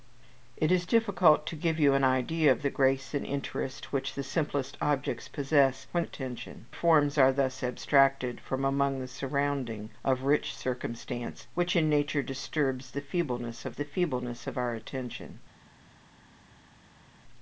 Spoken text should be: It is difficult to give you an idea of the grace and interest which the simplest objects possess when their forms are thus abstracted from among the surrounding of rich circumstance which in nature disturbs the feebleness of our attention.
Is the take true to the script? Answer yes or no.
no